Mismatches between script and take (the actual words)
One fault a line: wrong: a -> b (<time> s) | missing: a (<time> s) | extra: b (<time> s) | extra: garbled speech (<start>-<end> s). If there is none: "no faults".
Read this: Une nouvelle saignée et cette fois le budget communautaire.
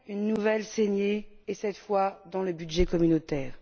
extra: dans (2.3 s)